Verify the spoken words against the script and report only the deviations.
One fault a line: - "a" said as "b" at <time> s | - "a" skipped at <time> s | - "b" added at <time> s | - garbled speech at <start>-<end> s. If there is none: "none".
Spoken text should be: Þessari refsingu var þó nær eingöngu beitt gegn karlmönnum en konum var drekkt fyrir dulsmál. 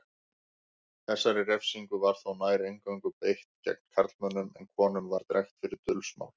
none